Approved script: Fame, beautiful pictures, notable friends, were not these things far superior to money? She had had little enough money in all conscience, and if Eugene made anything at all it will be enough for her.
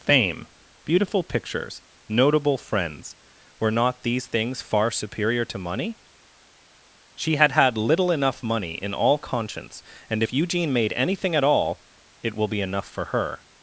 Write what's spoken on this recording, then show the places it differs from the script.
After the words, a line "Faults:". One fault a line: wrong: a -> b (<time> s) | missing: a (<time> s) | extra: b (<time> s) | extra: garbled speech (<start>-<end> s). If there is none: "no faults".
Fame, beautiful pictures, notable friends, were not these things far superior to money? She had had little enough money in all conscience, and if Eugene made anything at all it will be enough for her.
Faults:
no faults